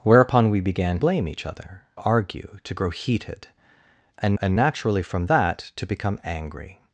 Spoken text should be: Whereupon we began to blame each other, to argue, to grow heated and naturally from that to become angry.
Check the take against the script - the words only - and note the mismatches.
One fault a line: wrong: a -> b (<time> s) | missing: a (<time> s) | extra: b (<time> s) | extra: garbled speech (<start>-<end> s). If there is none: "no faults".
missing: to (1.0 s)
missing: to (1.8 s)
extra: and (4.4 s)